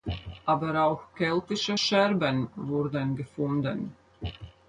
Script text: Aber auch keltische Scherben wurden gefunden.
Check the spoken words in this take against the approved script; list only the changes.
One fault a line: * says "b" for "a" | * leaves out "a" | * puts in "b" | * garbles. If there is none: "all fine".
all fine